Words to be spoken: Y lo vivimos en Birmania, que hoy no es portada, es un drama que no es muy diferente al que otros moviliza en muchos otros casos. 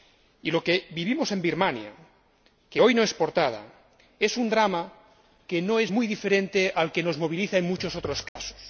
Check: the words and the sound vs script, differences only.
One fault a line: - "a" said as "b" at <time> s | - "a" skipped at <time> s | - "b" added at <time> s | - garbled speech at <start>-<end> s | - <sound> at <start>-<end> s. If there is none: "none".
- "que" added at 0.6 s
- "otros" said as "nos" at 7.0 s
- dropout at 8.3-8.4 s